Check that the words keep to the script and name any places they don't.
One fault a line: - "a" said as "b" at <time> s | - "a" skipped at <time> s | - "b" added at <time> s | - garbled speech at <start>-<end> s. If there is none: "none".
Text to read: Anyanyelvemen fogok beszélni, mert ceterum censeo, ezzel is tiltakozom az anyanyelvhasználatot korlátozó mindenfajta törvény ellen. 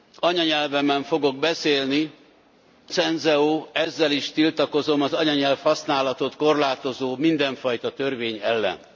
- "mert ceterum" skipped at 2.1 s